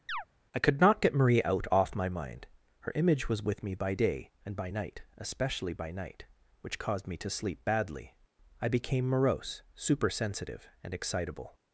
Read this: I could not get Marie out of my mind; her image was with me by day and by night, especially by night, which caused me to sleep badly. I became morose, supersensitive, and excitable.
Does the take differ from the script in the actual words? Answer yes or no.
yes